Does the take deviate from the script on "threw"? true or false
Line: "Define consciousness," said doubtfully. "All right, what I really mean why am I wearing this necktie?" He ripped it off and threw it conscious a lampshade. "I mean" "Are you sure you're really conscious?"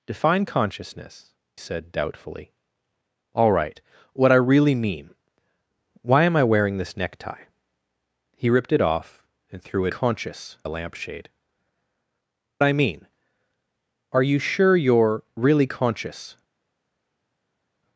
false